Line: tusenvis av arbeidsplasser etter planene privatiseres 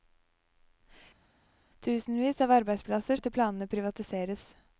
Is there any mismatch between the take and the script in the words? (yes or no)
no